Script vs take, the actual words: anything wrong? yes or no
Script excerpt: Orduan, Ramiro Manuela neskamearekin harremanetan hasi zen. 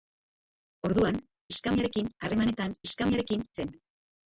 yes